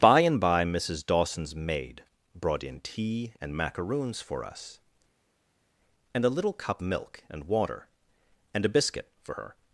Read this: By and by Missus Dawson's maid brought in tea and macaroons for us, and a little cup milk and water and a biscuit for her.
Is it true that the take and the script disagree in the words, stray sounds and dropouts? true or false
false